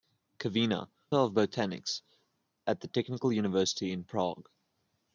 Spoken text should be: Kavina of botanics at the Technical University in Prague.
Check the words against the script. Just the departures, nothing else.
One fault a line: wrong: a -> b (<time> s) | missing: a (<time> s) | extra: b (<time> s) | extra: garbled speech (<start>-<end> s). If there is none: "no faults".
no faults